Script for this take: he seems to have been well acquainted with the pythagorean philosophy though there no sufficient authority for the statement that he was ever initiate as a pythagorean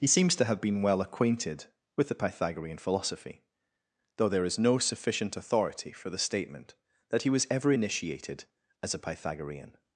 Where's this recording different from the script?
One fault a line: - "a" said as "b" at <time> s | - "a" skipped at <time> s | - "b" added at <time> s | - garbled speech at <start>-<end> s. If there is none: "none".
- "is" added at 4.4 s
- "initiate" said as "initiated" at 7.7 s